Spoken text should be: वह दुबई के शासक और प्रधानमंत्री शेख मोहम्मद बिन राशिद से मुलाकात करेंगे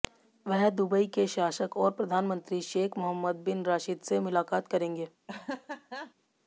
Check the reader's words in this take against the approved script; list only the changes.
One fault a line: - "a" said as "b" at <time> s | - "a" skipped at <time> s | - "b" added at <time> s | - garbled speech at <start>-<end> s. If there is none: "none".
none